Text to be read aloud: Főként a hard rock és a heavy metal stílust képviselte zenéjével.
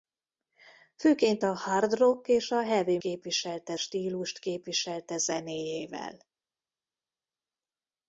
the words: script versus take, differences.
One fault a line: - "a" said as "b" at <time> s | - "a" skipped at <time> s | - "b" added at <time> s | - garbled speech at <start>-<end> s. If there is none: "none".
- "metal" said as "képviselte" at 3.0 s